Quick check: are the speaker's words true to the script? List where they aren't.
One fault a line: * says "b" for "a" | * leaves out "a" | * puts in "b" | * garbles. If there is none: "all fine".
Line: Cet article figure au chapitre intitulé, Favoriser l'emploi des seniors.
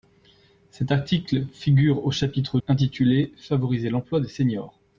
all fine